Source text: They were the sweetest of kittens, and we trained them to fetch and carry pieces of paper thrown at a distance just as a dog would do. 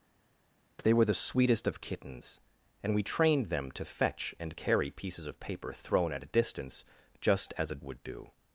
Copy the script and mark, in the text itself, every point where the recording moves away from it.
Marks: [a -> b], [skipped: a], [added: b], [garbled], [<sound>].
They were the sweetest of kittens, and we trained them to fetch and carry pieces of paper thrown at a distance just as a [skipped: dog] would do.